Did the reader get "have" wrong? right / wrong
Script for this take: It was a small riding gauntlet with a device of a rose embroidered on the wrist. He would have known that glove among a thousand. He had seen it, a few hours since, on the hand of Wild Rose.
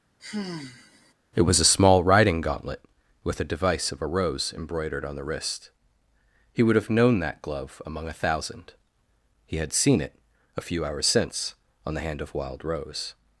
right